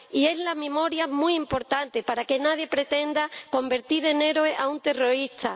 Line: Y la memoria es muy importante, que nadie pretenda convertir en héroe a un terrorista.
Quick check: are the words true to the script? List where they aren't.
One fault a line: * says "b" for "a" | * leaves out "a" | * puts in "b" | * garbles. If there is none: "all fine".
* puts in "para"